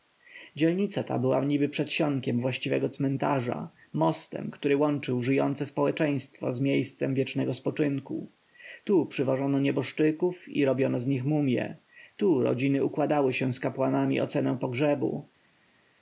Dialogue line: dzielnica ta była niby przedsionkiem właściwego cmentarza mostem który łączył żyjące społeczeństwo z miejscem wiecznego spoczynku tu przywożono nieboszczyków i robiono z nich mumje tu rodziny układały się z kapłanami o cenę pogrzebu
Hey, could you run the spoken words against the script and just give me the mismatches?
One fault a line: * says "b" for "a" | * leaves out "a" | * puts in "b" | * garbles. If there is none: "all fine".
all fine